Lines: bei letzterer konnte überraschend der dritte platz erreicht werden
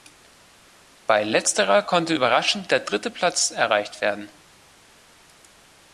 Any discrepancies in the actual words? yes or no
no